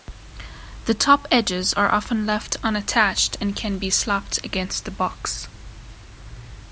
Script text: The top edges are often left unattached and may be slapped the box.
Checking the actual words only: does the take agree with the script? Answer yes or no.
no